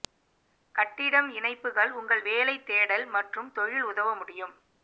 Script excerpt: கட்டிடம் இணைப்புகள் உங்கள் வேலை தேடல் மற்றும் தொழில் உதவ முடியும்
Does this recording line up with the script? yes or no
yes